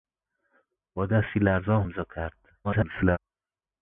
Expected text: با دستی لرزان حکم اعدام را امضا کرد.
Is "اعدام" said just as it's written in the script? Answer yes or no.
no